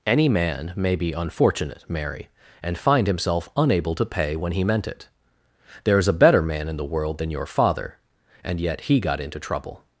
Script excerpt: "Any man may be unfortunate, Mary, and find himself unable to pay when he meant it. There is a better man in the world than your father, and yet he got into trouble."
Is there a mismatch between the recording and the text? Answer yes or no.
no